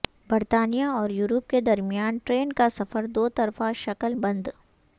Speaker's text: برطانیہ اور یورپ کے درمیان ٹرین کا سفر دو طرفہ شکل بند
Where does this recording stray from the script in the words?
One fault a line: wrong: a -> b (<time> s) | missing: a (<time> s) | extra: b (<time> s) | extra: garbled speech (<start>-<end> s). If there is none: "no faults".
no faults